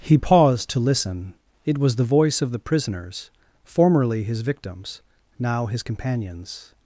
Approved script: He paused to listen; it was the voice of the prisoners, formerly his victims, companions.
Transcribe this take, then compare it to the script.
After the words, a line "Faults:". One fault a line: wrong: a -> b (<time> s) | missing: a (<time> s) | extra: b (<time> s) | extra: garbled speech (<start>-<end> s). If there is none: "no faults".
He paused to listen; it was the voice of the prisoners, formerly his victims, now his companions.
Faults:
extra: now his (5.4 s)